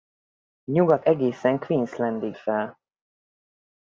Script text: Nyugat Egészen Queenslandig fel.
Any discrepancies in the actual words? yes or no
no